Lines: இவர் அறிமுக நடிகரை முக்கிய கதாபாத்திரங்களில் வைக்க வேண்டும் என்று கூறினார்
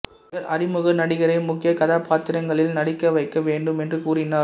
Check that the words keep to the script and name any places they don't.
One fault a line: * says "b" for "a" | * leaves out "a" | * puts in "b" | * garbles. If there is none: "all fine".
* puts in "நடிக்க"